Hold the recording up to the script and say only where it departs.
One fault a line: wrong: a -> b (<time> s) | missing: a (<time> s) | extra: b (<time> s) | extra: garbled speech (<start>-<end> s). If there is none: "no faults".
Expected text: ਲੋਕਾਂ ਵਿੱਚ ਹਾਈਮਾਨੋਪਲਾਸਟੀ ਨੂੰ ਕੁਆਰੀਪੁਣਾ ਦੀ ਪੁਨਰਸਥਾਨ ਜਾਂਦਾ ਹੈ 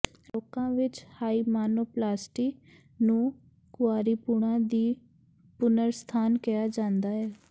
extra: ਕਿਹਾ (6.4 s)